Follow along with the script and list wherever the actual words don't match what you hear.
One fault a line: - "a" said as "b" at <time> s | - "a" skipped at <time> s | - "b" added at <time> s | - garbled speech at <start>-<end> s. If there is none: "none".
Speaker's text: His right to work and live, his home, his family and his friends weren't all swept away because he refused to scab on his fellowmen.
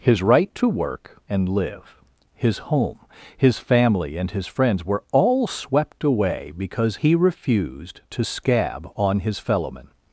- "weren't" said as "were" at 4.8 s